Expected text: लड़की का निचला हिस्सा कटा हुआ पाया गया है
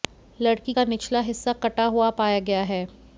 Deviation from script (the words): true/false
false